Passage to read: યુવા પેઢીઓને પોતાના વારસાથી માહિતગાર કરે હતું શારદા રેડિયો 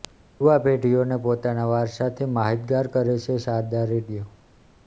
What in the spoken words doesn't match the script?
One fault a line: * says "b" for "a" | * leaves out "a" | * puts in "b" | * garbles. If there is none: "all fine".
* says "છે" for "હતું"